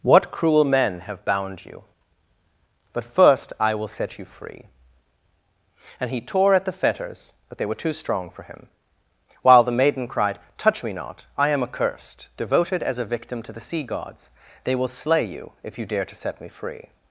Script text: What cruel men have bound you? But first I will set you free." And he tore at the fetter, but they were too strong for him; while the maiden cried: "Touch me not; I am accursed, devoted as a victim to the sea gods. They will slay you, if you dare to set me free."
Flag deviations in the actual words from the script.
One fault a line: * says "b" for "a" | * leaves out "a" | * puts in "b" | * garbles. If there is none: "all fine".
* says "fetters" for "fetter"